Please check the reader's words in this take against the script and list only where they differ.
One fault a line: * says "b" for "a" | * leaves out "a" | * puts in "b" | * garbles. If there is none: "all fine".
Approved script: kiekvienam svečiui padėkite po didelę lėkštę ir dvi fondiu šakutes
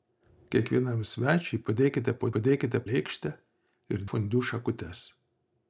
* says "padėkite" for "didelę"
* leaves out "dvi"